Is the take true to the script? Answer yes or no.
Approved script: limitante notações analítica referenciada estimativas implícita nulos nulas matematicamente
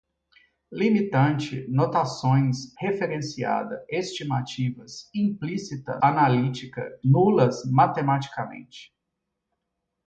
no